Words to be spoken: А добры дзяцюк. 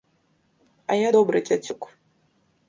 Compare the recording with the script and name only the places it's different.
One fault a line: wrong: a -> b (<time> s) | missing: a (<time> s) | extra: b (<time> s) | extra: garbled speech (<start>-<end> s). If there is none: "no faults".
extra: я (0.9 s)